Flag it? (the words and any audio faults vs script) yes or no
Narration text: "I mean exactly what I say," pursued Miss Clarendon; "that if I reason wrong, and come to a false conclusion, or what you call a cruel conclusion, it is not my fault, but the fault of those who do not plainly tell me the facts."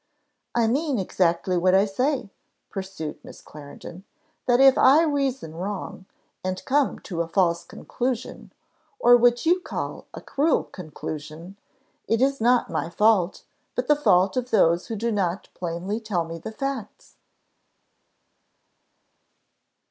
no